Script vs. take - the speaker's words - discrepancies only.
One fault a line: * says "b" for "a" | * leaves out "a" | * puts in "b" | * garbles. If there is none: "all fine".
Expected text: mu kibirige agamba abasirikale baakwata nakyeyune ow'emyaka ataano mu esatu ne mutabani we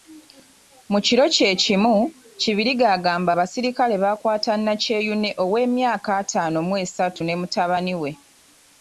* puts in "kiro kye kimu"